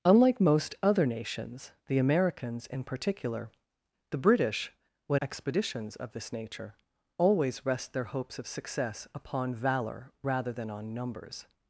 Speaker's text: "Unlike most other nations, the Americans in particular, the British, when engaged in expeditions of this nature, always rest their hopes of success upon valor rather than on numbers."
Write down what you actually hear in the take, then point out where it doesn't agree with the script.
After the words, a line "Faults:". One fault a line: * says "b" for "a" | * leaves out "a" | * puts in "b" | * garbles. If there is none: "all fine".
"Unlike most other nations, the Americans in particular, the British, when expeditions of this nature, always rest their hopes of success upon valor rather than on numbers."
Faults:
* leaves out "engaged in"